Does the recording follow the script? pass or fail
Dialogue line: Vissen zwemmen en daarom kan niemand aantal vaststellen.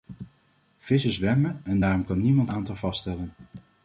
pass